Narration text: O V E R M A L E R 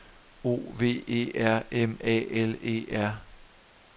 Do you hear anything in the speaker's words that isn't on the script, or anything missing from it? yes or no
no